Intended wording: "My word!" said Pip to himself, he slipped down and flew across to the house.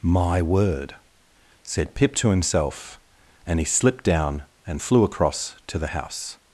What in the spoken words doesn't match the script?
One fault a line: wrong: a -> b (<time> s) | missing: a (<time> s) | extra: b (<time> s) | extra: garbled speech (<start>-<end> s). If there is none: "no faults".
extra: and (3.5 s)